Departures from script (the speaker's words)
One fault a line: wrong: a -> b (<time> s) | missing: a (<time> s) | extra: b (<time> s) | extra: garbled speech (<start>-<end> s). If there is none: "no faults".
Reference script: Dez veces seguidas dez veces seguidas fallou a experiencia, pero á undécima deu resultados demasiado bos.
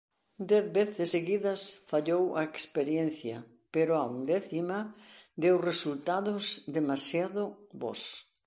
missing: dez veces seguidas (1.6 s)